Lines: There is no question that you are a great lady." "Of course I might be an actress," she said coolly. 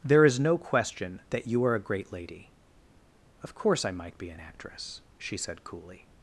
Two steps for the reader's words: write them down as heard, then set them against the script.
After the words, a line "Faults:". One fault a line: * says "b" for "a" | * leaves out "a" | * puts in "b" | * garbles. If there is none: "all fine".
There is no question that you are a great lady." "Of course I might be an actress," she said coolly.
Faults:
all fine